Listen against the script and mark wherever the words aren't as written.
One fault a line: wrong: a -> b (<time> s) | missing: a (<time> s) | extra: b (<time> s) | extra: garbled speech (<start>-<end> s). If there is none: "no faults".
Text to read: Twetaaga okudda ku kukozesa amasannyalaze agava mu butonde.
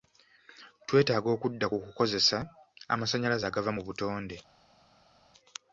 no faults